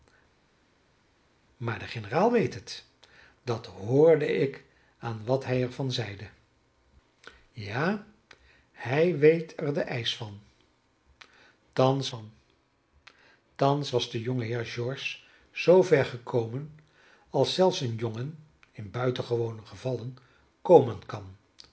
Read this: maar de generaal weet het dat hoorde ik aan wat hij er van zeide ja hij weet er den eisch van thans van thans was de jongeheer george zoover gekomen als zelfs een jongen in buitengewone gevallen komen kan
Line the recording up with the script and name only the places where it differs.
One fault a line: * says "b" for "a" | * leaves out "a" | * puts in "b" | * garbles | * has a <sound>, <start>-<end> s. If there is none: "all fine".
all fine